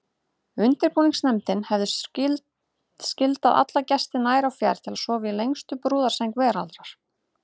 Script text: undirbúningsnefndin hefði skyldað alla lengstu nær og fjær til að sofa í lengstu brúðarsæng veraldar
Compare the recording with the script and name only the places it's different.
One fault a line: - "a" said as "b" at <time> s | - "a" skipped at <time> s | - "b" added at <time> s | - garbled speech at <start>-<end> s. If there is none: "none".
- "lengstu" said as "gesti" at 3.9 s